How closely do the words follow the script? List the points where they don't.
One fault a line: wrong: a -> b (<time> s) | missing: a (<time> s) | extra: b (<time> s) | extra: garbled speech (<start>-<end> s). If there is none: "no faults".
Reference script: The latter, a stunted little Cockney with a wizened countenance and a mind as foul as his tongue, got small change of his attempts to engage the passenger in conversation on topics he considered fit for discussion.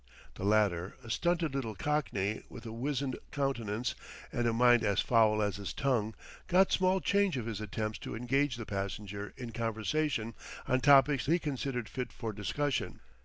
no faults